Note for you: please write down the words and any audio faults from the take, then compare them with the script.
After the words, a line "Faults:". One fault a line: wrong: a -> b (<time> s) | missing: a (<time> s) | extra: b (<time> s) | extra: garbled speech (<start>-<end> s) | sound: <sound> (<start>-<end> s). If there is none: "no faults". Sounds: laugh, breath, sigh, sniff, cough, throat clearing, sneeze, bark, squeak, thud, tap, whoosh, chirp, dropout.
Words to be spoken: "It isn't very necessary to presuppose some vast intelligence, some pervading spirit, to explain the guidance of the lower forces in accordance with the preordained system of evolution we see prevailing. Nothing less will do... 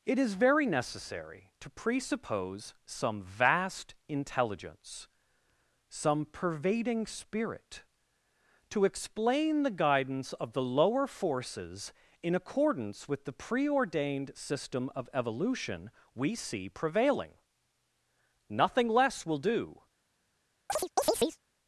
"It is very necessary to presuppose some vast intelligence, some pervading spirit, to explain the guidance of the lower forces in accordance with the preordained system of evolution we see prevailing. Nothing less will do...
Faults:
wrong: isn't -> is (0.2 s)
sound: chirp (20.7-21.4 s)